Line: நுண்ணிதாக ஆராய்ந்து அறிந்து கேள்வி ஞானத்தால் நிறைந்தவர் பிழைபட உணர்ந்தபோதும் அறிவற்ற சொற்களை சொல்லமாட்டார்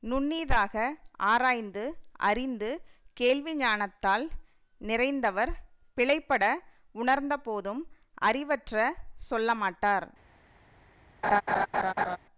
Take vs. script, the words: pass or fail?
fail